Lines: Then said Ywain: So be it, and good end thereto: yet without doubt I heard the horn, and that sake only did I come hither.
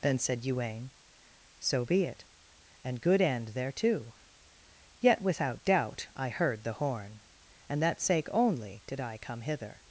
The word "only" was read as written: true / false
true